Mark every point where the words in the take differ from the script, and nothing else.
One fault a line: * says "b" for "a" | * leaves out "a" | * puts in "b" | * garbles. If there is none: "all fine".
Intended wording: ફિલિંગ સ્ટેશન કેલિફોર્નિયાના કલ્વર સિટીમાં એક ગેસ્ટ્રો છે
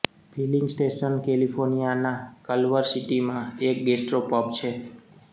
* puts in "પબ"